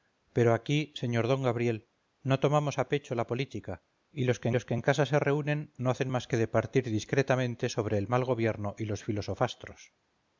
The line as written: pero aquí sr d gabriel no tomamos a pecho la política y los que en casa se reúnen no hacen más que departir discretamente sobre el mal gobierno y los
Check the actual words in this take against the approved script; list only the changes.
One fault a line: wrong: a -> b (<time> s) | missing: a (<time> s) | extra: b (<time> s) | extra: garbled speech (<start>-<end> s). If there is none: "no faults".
extra: los que (4.5 s)